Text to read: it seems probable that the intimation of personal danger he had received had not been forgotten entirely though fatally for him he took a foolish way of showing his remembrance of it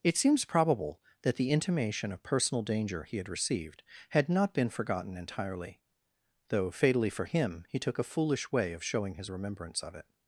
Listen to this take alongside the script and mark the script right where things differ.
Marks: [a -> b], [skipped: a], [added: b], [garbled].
it seems probable that the intimation of personal danger he had received had not been forgotten entirely though fatally for him he took a foolish way of showing his remembrance of it